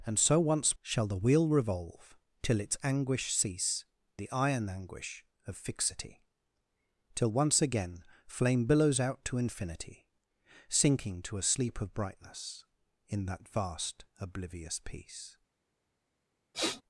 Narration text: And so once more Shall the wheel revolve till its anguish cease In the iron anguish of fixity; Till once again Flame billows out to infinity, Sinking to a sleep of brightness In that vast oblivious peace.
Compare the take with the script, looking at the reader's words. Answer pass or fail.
fail